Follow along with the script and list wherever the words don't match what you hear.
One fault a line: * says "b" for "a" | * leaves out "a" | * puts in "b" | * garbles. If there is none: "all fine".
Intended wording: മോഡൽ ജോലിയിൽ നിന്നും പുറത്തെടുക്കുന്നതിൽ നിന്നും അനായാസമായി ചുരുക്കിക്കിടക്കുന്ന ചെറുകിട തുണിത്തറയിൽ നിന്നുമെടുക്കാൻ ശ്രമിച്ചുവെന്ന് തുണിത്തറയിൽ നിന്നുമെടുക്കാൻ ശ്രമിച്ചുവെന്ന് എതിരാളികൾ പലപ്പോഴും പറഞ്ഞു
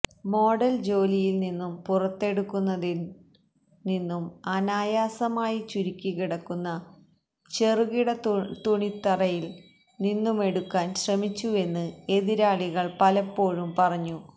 * leaves out "തുണിത്തറയിൽ നിന്നുമെടുക്കാൻ ശ്രമിച്ചുവെന്ന്"